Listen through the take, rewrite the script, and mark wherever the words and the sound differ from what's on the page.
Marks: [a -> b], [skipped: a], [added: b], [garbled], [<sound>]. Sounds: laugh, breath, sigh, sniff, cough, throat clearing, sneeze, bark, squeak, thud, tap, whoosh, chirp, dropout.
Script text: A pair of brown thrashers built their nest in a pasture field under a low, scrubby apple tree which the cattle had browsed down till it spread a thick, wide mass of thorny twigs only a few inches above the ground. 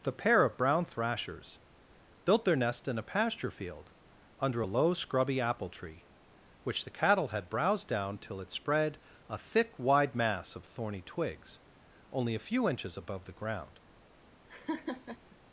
[A -> The] pair of brown thrashers built their nest in a pasture field under a low, scrubby apple tree which the cattle had browsed down till it spread a thick, wide mass of thorny twigs only a few inches above the ground. [laugh]